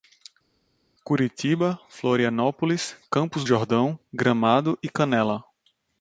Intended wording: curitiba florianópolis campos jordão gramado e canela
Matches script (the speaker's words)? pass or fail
pass